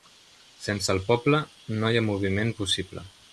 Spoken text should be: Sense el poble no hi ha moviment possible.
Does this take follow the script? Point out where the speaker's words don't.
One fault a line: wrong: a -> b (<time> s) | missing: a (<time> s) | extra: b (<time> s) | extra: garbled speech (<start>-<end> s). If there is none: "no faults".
no faults